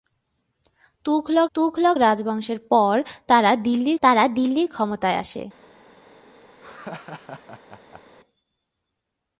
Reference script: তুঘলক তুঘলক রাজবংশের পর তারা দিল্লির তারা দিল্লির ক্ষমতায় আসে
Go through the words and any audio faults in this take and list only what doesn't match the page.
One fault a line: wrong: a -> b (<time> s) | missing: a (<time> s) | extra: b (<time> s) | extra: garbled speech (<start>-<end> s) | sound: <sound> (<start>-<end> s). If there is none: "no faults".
sound: laugh (6.6-8.0 s)